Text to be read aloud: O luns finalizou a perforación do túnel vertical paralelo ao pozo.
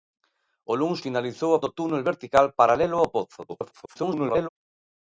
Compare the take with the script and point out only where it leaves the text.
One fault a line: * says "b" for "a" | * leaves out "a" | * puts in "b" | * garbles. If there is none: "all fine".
* leaves out "perforación"
* garbles